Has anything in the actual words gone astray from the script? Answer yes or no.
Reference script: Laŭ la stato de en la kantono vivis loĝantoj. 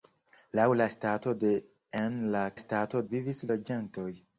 yes